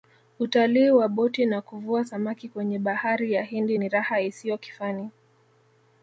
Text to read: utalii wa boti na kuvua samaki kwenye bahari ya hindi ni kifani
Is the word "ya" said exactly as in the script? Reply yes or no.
yes